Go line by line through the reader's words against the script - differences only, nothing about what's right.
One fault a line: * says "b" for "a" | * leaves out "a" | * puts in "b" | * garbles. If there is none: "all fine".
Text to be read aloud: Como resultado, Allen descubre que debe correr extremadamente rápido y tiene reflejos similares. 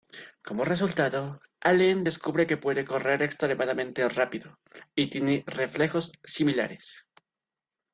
* says "puede" for "debe"